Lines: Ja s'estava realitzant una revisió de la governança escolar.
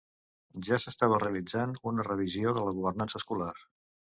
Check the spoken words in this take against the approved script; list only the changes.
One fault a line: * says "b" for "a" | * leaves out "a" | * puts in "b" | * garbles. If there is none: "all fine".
all fine